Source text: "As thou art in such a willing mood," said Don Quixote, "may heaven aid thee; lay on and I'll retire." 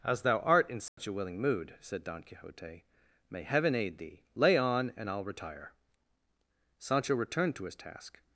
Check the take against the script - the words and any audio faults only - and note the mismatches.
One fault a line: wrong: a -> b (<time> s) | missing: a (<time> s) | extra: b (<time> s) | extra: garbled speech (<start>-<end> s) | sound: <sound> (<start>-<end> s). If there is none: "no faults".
sound: dropout (0.9-1.0 s)
extra: Sancho returned to his task (6.8 s)